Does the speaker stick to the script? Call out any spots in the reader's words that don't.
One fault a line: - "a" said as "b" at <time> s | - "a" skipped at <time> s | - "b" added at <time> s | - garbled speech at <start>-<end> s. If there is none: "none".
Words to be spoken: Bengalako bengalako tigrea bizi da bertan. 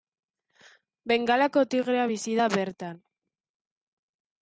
- "bengalako" skipped at 1.6 s